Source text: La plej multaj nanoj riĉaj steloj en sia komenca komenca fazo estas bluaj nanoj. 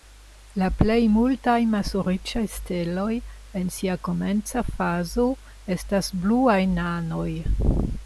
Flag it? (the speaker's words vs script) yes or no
yes